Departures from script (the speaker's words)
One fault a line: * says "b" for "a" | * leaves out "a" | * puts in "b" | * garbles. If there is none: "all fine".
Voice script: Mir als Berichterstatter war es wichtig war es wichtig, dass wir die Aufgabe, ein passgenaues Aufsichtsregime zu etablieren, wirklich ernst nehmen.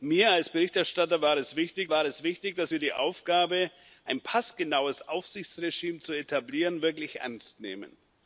all fine